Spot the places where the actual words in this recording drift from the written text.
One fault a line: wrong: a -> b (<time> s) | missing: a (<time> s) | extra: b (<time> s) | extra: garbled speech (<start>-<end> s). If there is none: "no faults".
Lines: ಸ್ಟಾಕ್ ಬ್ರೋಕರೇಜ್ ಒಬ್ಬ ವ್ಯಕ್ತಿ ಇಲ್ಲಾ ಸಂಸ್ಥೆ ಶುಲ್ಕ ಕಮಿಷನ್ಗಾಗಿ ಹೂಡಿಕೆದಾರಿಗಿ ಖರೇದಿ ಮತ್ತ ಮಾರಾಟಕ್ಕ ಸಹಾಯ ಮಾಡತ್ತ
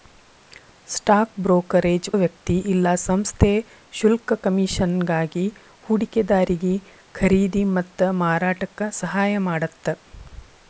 missing: ಒಬ್ಬ (2.1 s)